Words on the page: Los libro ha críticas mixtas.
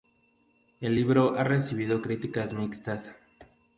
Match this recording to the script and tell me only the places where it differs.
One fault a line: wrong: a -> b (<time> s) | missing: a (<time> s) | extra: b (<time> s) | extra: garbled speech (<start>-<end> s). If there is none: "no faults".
wrong: Los -> El (0.8 s)
extra: recibido (1.4 s)